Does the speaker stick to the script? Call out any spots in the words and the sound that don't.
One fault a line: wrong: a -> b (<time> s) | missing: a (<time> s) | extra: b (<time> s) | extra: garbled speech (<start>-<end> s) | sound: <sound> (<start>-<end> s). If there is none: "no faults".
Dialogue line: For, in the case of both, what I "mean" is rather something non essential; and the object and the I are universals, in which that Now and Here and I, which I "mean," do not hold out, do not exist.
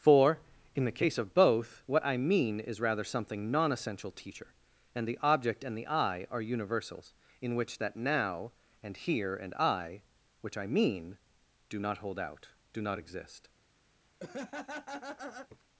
extra: teacher (4.1 s)
sound: laugh (14.2-15.6 s)